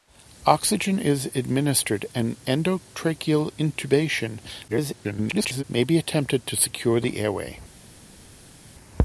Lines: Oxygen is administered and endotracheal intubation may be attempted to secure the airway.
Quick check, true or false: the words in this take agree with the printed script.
false